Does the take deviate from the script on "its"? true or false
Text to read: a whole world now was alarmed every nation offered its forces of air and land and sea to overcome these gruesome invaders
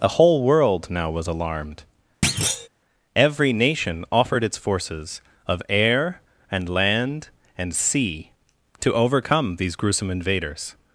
false